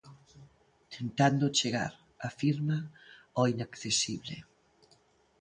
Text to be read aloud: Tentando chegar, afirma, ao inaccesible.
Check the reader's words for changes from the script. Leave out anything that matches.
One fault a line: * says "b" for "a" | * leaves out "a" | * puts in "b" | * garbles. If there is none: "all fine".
all fine